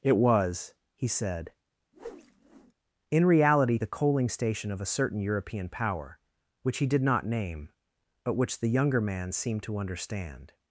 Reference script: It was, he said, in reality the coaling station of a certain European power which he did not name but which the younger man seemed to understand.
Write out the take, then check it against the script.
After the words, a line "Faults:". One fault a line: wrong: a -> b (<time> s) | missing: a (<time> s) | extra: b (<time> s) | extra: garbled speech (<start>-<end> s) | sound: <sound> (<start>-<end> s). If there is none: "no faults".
It was, he said, in reality the coaling station of a certain European power which he did not name but which the younger man seemed to understand.
Faults:
sound: whoosh (1.9-2.7 s)